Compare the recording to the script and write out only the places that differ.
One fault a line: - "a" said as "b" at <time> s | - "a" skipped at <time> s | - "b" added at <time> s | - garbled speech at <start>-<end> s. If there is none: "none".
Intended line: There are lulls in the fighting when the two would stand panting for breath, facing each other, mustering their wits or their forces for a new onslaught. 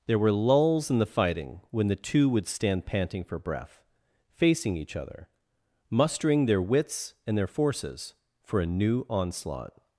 - "are" said as "were" at 0.2 s
- "or" said as "and" at 7.2 s